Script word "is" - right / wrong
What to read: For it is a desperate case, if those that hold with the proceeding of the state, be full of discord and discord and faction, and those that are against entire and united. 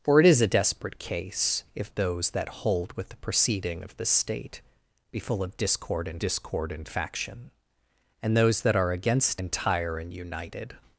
right